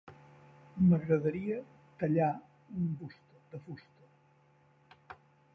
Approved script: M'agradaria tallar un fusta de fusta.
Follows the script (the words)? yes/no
yes